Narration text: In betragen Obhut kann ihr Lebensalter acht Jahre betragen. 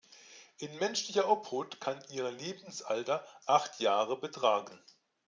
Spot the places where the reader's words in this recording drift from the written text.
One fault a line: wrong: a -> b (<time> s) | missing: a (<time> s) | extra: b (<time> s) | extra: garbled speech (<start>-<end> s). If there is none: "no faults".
wrong: betragen -> menschlicher (0.8 s)